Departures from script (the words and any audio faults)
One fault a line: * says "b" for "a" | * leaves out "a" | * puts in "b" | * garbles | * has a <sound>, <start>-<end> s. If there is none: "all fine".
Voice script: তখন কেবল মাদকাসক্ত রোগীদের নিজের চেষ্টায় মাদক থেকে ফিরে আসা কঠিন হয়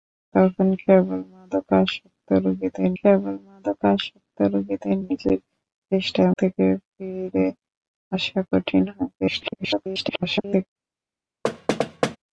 * puts in "কেবল মাদকাসক্ত রোগীদের"
* leaves out "মাদক"
* garbles
* has a thud, 11.4-12.2 s